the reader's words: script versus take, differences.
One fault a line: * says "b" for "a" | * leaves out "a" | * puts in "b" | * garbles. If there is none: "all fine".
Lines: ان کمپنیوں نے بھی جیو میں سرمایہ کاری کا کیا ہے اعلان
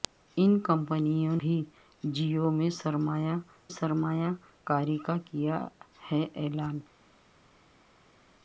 * leaves out "نے"
* puts in "سرمایہ"